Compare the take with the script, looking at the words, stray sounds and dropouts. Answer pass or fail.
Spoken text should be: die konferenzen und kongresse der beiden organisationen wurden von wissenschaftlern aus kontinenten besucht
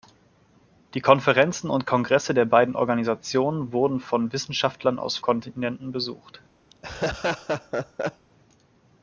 fail